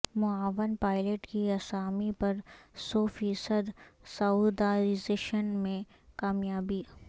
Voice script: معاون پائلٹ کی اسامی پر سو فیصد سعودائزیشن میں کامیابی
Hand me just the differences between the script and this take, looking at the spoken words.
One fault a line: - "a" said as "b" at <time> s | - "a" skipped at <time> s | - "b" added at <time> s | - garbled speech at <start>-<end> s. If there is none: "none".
none